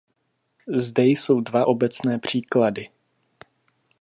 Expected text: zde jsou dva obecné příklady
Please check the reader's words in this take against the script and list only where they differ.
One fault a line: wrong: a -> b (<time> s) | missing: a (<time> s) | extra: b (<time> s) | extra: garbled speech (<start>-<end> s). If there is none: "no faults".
no faults